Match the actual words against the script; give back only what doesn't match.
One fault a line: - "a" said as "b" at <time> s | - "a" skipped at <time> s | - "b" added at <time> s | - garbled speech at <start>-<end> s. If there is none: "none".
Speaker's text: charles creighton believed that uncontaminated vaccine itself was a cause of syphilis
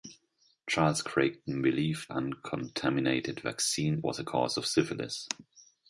- "that" skipped at 2.1 s
- "itself" skipped at 4.0 s